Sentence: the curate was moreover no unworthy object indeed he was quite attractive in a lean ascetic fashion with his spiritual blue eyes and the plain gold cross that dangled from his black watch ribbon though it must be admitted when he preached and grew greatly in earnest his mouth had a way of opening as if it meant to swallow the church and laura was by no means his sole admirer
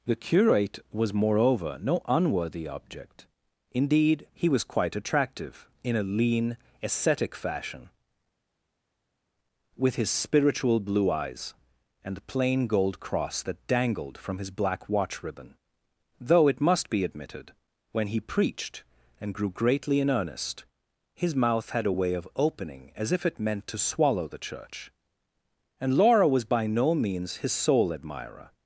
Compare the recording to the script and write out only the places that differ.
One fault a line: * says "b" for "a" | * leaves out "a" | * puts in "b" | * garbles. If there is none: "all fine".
all fine